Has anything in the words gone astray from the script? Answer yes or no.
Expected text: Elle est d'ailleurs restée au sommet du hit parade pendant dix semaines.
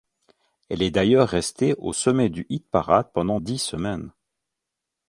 no